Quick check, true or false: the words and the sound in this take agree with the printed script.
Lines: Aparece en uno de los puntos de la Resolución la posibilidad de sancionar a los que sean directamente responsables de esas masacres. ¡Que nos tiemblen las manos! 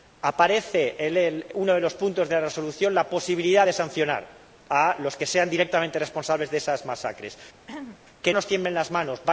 false